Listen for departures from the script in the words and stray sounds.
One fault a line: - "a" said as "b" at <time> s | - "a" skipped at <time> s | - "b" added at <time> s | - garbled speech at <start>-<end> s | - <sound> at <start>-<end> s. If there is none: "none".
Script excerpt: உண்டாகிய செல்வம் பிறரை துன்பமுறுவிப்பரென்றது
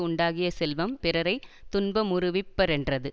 none